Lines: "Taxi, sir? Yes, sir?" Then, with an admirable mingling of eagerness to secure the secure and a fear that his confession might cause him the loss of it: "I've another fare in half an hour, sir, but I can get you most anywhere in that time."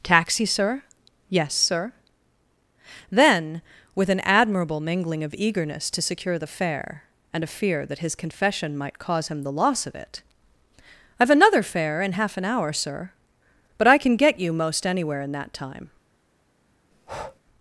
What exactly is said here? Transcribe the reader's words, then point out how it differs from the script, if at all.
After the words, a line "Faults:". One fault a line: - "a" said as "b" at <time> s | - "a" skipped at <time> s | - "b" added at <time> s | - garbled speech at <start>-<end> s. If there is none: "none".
"Taxi, sir? Yes, sir?" Then, with an admirable mingling of eagerness to secure the fare and a fear that his confession might cause him the loss of it: "I've another fare in half an hour, sir, but I can get you most anywhere in that time."
Faults:
- "secure" said as "fare" at 6.5 s